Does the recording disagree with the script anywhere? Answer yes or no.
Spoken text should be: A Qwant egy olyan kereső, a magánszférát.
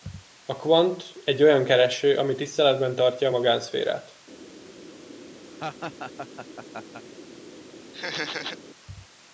yes